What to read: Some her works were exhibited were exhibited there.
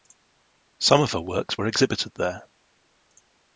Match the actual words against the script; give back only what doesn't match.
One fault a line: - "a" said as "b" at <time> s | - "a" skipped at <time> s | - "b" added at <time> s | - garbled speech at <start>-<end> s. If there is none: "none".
- "of" added at 1.0 s
- "were exhibited" skipped at 2.1 s